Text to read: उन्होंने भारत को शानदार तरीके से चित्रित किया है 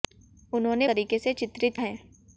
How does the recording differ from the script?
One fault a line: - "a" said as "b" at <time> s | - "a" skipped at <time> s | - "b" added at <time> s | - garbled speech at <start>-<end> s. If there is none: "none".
- "भारत को शानदार" skipped at 0.9 s
- "किया" skipped at 1.8 s